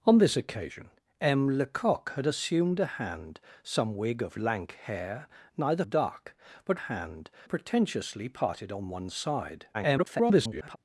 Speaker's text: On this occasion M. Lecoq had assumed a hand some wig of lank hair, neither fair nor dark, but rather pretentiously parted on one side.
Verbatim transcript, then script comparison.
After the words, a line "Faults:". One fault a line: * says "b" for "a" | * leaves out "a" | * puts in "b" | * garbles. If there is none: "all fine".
On this occasion M. Lecoq had assumed a hand some wig of lank hair, neither dark, but hand pretentiously parted on one side. [garbled]
Faults:
* leaves out "fair nor"
* says "hand" for "rather"
* garbles